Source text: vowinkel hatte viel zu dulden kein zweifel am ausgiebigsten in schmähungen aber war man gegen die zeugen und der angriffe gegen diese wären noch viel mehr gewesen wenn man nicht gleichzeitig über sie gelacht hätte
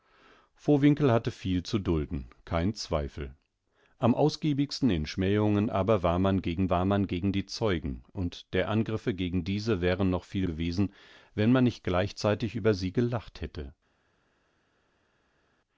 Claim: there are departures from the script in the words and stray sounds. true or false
true